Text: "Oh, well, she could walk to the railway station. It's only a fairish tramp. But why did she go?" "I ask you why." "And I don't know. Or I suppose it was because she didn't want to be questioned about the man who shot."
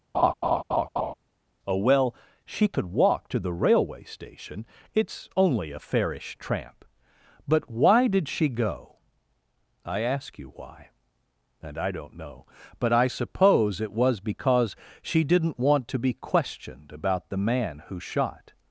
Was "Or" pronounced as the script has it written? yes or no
no